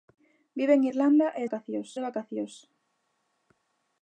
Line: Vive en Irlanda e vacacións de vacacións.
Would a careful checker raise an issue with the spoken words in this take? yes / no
no